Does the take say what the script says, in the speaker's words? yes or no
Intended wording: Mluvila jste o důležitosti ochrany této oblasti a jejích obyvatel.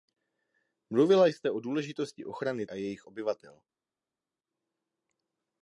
no